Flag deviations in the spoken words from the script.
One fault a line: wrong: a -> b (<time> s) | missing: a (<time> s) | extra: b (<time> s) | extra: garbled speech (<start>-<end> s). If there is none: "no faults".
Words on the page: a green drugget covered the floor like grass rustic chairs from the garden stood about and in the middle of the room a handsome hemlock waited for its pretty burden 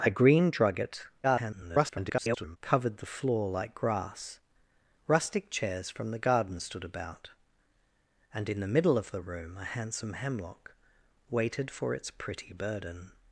extra: garbled speech (1.2-2.6 s)